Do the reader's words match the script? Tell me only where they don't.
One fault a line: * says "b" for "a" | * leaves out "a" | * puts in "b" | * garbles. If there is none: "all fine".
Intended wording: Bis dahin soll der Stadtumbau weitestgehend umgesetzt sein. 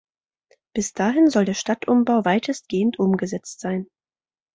all fine